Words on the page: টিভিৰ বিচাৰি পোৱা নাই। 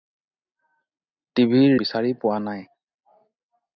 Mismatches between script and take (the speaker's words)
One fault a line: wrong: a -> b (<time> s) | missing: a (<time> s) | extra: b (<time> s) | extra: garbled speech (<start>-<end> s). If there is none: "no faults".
no faults